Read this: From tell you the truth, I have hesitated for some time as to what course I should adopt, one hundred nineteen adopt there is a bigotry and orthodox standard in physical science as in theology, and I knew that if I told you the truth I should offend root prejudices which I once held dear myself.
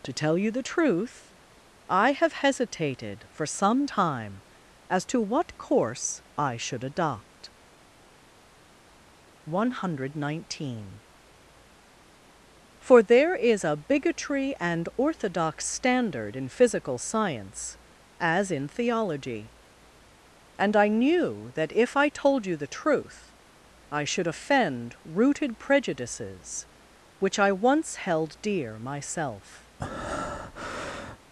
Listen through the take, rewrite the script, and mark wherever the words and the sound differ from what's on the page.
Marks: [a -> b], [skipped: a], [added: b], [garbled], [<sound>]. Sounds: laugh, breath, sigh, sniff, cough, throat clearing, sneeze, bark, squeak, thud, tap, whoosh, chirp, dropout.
[From -> To] tell you the truth, I have hesitated for some time as to what course I should adopt, one hundred nineteen [adopt -> for] there is a bigotry and orthodox standard in physical science as in theology, and I knew that if I told you the truth I should offend [root -> rooted] prejudices which I once held dear myself. [breath]